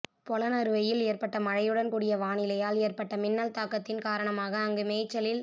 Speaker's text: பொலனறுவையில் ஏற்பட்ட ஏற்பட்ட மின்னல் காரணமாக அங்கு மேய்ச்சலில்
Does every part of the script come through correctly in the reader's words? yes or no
no